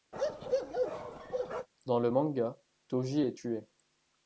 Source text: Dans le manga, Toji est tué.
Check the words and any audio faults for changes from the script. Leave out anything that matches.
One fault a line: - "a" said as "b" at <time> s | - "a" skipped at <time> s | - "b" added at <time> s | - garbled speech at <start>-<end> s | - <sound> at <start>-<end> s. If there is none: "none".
- bark at 0.1-1.7 s